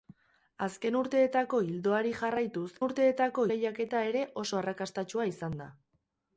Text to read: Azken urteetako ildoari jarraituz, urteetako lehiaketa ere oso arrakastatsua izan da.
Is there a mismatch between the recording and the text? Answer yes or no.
no